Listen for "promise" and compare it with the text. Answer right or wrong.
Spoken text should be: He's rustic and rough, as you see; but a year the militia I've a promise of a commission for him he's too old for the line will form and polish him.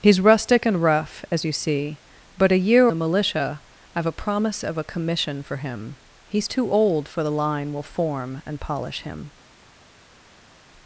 right